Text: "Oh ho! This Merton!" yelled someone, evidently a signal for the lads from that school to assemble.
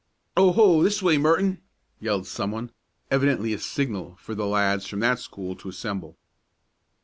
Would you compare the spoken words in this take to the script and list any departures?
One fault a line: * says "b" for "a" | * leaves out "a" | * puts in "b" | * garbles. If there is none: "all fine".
* puts in "way"